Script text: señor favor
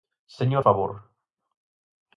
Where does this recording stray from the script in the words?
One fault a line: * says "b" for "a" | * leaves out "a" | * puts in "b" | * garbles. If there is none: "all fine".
all fine